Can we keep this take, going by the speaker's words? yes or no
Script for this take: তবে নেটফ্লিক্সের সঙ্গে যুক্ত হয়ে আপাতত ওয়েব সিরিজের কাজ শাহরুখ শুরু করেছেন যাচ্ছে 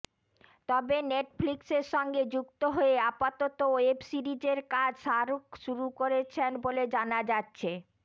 no